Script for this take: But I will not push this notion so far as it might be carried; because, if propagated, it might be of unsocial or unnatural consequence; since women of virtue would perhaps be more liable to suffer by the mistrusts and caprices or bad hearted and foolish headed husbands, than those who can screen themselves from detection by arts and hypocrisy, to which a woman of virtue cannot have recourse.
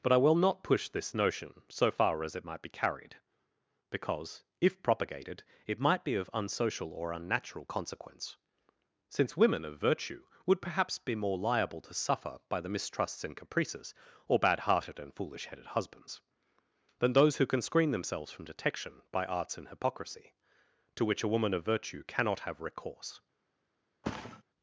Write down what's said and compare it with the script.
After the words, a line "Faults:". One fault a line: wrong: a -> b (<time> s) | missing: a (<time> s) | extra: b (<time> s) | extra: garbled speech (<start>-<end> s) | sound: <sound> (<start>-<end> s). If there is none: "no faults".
But I will not push this notion so far as it might be carried; because, if propagated, it might be of unsocial or unnatural consequence; since women of virtue would perhaps be more liable to suffer by the mistrusts and caprices or bad hearted and foolish headed husbands, than those who can screen themselves from detection by arts and hypocrisy, to which a woman of virtue cannot have recourse.
Faults:
sound: thud (24.0-24.4 s)